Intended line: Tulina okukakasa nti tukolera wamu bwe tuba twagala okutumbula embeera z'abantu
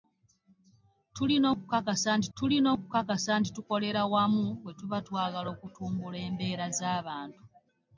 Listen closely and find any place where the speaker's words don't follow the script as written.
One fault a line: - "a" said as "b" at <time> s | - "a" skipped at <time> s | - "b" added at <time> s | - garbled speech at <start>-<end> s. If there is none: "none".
- "tulina okukakasa nti" added at 2.4 s